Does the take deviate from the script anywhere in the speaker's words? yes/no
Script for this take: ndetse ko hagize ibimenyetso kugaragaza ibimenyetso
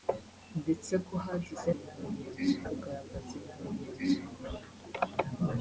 no